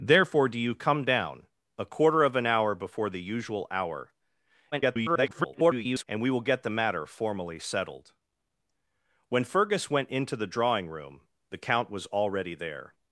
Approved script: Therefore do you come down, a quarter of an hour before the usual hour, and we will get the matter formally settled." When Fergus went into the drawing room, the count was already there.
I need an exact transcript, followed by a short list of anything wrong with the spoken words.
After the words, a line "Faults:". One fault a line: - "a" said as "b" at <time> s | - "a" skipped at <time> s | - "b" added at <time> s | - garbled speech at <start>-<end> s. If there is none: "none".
Therefore do you come down, a quarter of an hour before the usual hour, [garbled] and we will get the matter formally settled." When Fergus went into the drawing room, the count was already there.
Faults:
- garbled speech at 4.7-6.0 s